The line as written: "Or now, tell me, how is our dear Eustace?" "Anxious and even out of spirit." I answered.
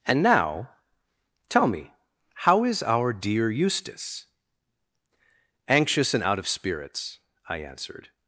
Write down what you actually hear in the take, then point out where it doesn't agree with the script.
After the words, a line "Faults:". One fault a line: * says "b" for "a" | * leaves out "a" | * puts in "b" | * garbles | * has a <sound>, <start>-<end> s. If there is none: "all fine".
"And now, tell me, how is our dear Eustace?" "Anxious and out of spirits." I answered.
Faults:
* says "And" for "Or"
* leaves out "even"
* says "spirits" for "spirit"